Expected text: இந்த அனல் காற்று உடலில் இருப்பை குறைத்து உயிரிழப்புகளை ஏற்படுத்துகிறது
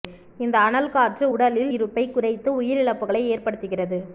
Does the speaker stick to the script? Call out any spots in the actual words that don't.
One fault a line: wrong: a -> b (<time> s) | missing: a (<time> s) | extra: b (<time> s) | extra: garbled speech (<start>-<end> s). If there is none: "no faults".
no faults